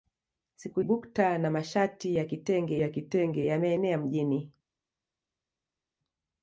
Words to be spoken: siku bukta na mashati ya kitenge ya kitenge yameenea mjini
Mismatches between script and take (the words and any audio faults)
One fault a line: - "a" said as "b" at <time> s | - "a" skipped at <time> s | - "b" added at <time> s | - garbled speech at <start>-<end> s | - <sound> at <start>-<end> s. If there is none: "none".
none